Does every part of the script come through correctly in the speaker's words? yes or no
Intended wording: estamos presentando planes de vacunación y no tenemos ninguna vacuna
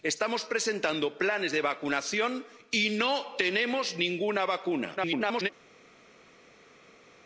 no